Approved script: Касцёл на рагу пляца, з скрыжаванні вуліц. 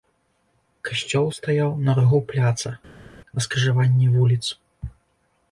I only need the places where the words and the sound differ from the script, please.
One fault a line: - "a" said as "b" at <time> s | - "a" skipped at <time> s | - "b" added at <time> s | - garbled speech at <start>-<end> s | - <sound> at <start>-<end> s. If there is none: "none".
- "стаяў" added at 1.4 s
- "з" said as "на" at 3.4 s